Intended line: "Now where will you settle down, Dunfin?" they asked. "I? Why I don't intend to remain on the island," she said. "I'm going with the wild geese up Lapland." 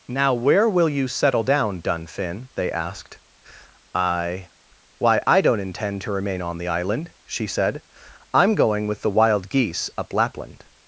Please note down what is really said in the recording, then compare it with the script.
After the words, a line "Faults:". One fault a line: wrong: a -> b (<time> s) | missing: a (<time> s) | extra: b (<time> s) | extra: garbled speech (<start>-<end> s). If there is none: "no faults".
"Now where will you settle down, Dunfin?" they asked. "I? Why I don't intend to remain on the island," she said. "I'm going with the wild geese up Lapland."
Faults:
no faults